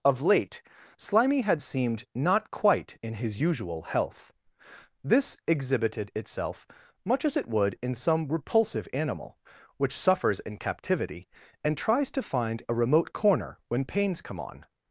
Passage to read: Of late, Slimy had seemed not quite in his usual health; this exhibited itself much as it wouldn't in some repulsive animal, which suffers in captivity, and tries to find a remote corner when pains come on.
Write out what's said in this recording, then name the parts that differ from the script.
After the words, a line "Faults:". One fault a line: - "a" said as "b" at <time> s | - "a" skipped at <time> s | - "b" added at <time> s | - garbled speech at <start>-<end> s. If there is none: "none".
Of late, Slimy had seemed not quite in his usual health; this exhibited itself much as it would in some repulsive animal, which suffers in captivity, and tries to find a remote corner when pains come on.
Faults:
- "wouldn't" said as "would" at 7.5 s